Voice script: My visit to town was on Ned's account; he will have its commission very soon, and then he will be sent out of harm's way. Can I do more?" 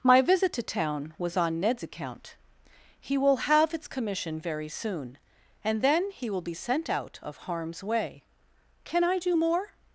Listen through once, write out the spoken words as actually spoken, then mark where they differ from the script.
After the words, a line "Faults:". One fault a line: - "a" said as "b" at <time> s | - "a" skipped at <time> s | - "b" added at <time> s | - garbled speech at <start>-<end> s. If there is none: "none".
My visit to town was on Ned's account; he will have its commission very soon, and then he will be sent out of harm's way. Can I do more?"
Faults:
none